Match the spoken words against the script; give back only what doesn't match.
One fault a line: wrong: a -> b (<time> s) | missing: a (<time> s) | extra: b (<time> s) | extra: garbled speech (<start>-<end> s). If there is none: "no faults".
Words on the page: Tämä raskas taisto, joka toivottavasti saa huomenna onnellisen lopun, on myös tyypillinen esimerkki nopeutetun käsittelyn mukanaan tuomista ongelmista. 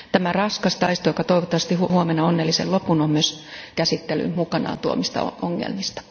missing: saa (1.8 s)
missing: tyypillinen esimerkki nopeutetun (3.4 s)